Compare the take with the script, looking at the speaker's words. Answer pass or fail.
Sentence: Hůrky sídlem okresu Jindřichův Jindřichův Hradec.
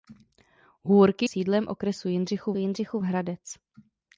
pass